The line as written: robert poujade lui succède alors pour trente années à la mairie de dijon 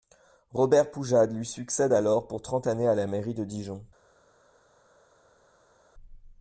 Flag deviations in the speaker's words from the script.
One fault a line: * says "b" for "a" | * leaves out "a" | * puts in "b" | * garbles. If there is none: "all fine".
all fine